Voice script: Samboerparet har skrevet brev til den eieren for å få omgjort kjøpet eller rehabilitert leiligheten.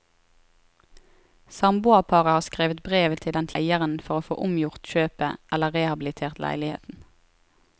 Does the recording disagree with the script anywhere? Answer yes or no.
no